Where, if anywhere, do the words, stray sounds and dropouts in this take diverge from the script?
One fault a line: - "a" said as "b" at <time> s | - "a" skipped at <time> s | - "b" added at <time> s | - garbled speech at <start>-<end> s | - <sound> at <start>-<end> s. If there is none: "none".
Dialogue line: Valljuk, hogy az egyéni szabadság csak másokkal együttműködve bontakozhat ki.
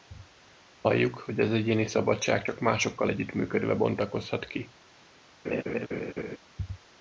- laugh at 5.4-6.4 s